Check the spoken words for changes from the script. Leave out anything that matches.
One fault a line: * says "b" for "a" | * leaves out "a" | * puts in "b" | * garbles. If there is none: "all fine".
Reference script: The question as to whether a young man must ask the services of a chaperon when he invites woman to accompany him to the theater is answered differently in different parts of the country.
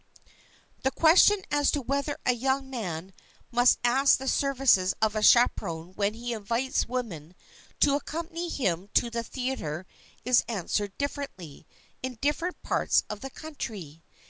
all fine